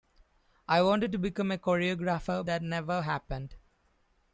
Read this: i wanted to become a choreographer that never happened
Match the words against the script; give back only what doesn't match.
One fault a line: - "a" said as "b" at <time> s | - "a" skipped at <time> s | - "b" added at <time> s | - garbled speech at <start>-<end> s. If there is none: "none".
none